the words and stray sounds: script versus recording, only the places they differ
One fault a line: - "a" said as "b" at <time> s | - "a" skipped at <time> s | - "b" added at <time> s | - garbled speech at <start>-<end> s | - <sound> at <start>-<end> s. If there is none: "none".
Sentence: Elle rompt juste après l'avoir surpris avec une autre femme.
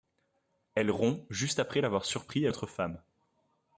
- "avec une" skipped at 2.5 s